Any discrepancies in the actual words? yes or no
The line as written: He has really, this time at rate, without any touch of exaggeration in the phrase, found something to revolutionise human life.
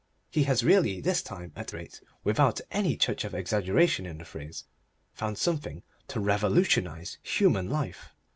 no